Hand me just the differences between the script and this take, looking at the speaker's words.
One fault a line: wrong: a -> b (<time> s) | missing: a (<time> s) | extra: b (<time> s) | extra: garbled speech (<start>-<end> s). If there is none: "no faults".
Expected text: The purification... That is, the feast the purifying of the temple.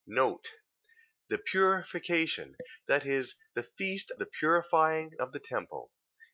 no faults